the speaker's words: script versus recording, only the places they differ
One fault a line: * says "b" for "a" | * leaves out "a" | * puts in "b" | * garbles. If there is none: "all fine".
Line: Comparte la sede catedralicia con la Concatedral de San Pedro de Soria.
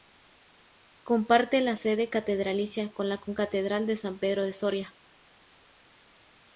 all fine